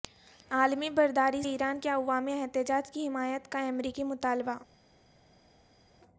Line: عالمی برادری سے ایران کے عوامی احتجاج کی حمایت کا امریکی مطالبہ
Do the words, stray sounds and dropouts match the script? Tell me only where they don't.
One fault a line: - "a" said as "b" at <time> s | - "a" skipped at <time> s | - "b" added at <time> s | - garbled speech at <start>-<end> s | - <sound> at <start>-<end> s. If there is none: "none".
- "سے" skipped at 1.4 s